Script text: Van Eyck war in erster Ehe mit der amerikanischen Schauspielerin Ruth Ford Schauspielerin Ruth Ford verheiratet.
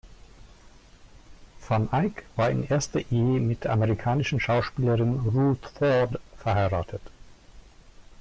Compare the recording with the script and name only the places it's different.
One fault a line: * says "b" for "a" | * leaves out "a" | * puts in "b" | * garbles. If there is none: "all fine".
* leaves out "Schauspielerin Ruth Ford"